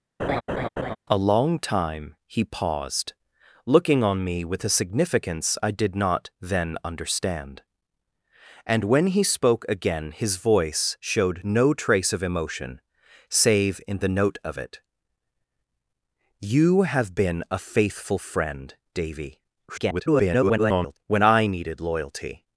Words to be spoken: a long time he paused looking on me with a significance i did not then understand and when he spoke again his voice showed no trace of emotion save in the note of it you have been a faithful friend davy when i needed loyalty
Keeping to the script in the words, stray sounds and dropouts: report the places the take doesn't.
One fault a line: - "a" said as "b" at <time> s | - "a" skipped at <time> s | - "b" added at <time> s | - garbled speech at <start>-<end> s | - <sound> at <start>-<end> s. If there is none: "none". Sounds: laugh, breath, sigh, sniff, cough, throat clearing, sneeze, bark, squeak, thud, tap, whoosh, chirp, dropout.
- laugh at 0.2-1.0 s
- garbled speech at 19.7-21.0 s